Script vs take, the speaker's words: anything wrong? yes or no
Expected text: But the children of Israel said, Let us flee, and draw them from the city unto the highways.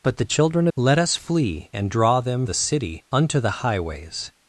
yes